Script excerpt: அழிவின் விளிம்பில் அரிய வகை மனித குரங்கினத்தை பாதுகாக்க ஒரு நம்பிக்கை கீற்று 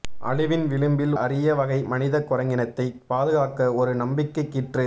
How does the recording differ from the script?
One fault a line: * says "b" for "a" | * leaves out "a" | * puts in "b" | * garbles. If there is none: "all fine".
all fine